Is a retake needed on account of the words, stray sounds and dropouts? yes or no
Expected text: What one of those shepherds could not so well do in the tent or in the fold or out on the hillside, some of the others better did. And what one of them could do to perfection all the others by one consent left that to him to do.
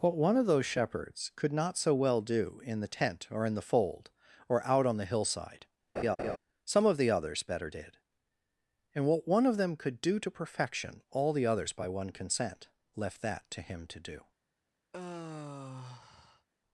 yes